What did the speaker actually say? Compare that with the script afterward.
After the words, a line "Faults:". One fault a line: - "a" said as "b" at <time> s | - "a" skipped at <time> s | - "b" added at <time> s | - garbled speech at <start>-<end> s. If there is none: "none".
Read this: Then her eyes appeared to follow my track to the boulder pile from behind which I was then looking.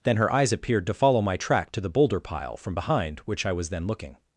Then her eyes appeared to follow my track to the boulder pile from behind which I was then looking.
Faults:
none